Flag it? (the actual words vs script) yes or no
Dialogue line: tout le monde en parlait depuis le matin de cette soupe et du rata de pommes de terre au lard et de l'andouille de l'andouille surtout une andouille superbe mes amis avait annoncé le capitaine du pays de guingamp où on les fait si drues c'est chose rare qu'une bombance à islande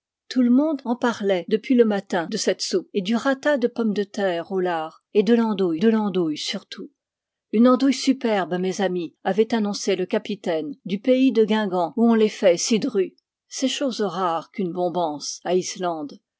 no